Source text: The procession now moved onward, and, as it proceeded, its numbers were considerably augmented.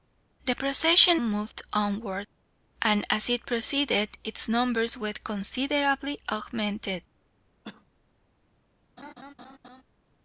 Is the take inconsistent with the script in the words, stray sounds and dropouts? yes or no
yes